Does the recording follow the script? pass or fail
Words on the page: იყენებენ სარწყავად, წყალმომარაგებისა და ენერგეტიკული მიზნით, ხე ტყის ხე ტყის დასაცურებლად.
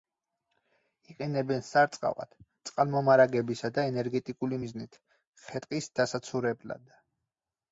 fail